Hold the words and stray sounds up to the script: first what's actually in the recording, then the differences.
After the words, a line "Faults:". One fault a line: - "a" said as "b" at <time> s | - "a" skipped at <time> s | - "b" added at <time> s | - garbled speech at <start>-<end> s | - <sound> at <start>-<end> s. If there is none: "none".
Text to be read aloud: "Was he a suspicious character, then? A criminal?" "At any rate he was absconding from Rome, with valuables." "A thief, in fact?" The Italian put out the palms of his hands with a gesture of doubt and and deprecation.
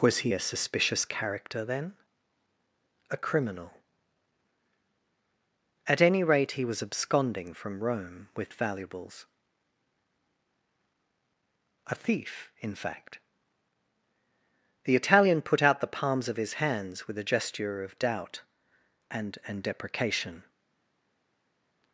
"Was he a suspicious character, then? A criminal?" "At any rate he was absconding from Rome, with valuables." "A thief, in fact?" The Italian put out the palms of his hands with a gesture of doubt and and deprecation.
Faults:
none